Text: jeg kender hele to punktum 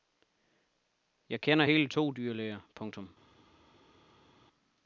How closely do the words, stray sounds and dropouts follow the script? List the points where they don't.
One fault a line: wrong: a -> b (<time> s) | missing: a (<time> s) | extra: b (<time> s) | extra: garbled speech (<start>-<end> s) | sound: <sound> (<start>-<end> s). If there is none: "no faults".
extra: dyrlæger (2.1 s)